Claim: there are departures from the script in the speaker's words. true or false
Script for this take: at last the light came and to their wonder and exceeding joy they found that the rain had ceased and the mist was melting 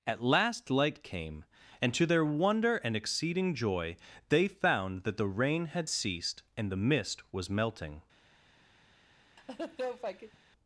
true